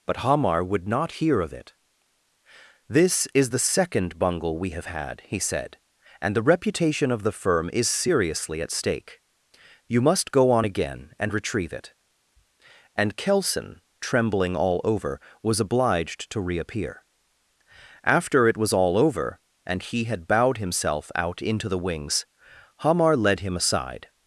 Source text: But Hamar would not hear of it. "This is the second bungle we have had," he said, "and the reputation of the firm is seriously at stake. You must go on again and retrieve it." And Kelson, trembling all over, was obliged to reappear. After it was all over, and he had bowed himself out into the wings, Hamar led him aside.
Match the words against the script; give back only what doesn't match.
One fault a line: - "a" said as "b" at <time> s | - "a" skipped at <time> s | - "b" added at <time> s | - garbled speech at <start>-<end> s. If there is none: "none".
none